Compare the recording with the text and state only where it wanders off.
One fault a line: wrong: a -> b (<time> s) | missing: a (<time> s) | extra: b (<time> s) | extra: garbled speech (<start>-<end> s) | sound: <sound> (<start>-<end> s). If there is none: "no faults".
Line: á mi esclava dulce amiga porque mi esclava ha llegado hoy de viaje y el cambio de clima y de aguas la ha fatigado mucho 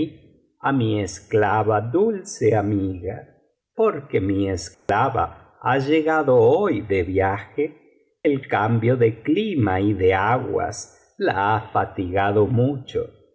sound: dropout (4.7-4.9 s)
missing: y (7.7 s)